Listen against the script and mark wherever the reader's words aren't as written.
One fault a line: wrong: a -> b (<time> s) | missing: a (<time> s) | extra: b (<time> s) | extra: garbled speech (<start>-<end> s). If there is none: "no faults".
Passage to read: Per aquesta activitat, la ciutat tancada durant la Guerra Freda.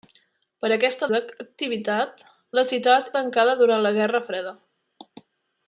no faults